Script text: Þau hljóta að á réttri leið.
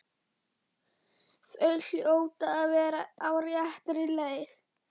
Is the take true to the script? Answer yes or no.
no